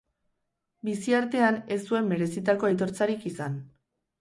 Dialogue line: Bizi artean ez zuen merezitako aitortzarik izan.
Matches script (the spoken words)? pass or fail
pass